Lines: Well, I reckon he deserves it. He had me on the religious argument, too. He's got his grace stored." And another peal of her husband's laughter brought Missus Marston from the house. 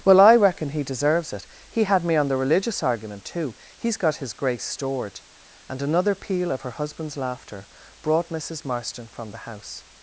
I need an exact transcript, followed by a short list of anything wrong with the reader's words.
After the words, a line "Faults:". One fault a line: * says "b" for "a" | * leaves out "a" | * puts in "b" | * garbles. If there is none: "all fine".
Well, I reckon he deserves it. He had me on the religious argument, too. He's got his grace stored." And another peal of her husband's laughter brought Missus Marston from the house.
Faults:
all fine